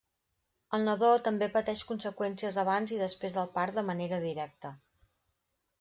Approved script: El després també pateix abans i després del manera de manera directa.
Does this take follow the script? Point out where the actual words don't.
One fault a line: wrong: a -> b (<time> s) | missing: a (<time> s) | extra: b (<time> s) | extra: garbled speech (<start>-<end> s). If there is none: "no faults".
wrong: després -> nadó (0.9 s)
extra: conseqüències (1.9 s)
wrong: manera -> part (3.6 s)